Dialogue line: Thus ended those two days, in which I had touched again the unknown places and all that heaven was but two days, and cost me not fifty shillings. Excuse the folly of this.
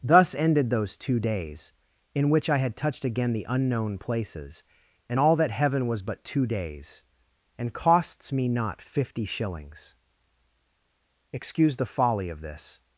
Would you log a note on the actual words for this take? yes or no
yes